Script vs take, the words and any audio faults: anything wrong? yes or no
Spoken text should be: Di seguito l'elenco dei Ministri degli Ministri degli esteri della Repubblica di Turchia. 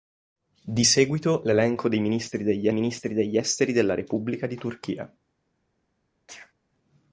yes